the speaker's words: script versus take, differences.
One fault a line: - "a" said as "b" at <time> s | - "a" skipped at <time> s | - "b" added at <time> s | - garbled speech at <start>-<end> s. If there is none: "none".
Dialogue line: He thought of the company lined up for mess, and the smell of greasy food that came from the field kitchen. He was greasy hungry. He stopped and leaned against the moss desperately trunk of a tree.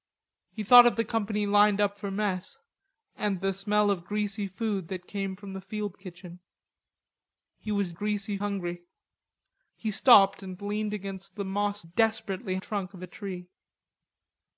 none